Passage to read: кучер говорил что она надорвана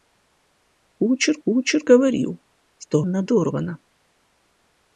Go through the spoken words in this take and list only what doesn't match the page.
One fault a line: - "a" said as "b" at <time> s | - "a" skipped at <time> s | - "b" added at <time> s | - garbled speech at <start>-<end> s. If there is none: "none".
- "кучер" added at 1.4 s
- "она" skipped at 3.0 s